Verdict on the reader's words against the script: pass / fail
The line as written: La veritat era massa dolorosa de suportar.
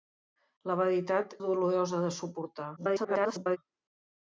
fail